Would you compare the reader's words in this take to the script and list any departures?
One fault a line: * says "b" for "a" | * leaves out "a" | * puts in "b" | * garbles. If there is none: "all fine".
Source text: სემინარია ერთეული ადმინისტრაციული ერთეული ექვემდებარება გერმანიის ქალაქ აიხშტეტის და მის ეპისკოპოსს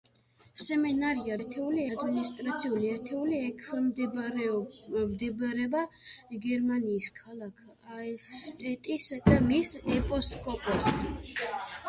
all fine